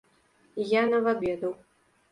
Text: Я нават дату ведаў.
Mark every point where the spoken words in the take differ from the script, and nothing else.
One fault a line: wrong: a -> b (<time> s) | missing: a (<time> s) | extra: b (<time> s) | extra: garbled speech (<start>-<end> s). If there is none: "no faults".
missing: дату (1.2 s)